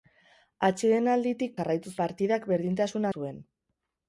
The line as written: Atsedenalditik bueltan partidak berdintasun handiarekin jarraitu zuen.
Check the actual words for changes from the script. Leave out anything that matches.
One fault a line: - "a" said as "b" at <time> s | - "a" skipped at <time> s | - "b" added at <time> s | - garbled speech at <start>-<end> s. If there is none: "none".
- "bueltan" said as "jarraitu" at 1.6 s
- "handiarekin jarraitu" skipped at 3.1 s